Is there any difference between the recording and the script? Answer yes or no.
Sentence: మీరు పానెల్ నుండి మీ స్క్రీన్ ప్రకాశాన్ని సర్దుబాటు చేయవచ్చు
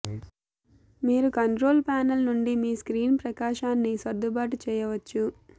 yes